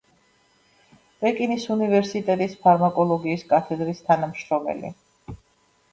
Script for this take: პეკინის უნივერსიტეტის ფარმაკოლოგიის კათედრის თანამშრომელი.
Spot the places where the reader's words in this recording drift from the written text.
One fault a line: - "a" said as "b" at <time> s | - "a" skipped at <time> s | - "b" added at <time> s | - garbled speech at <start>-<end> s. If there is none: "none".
none